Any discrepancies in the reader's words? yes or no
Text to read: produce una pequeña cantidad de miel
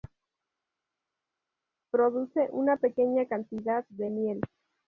no